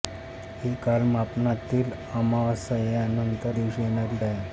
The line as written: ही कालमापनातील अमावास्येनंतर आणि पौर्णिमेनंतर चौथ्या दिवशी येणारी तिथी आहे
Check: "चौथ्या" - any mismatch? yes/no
yes